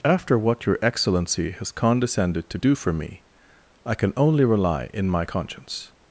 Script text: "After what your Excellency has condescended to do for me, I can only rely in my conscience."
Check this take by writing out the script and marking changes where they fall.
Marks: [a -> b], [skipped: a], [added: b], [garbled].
"After what your Excellency has condescended to do for me, I can only rely in my conscience."